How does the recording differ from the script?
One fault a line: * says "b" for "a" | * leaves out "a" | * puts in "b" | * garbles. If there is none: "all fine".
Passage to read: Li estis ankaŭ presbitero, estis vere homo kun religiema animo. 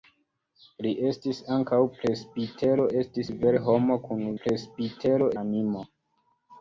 * says "presbitero" for "religiema"